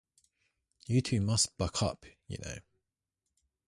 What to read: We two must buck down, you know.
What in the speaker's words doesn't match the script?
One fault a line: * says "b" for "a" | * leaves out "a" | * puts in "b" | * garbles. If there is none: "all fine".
* says "You" for "We"
* says "up" for "down"